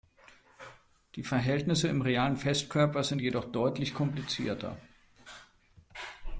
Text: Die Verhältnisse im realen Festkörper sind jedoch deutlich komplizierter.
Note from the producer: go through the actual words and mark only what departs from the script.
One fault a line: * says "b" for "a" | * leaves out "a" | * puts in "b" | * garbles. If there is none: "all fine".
all fine